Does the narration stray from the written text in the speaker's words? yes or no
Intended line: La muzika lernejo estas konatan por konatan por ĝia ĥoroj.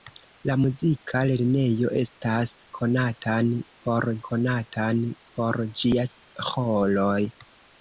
no